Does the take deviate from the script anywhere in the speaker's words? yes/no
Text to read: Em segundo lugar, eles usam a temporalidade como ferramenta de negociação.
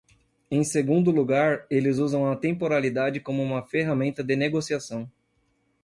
yes